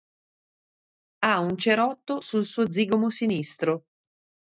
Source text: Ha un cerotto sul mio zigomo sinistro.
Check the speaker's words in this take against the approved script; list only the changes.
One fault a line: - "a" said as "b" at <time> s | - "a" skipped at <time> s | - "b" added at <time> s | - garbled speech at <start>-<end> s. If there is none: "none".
- "mio" said as "suo" at 2.5 s